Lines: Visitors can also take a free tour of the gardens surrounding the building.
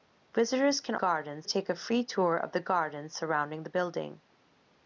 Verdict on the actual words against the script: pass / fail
fail